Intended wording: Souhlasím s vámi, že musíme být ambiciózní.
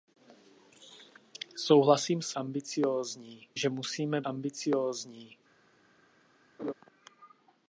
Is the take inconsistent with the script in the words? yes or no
yes